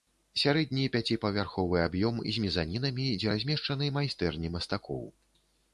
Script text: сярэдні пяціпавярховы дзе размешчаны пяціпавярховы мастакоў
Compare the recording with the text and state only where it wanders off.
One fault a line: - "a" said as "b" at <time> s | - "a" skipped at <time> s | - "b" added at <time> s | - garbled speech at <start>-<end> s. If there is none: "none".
- "аб'ём з мезанінамі" added at 1.9 s
- "пяціпавярховы" said as "майстэрні" at 4.0 s